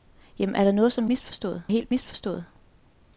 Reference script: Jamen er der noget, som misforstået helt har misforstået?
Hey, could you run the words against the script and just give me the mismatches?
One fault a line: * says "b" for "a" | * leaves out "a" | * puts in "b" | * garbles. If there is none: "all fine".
all fine